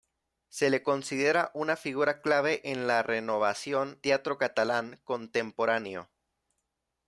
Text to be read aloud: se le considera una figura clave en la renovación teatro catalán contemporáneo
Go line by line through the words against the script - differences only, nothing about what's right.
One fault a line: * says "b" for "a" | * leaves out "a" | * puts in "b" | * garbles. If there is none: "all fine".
all fine